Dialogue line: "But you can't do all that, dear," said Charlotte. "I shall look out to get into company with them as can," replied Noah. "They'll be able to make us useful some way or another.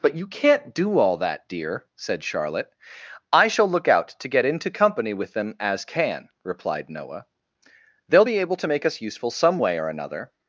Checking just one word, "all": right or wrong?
right